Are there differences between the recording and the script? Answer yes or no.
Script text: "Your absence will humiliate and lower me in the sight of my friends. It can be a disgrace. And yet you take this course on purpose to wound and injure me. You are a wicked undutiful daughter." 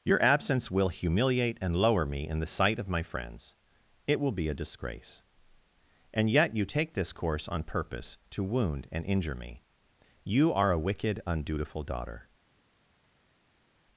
yes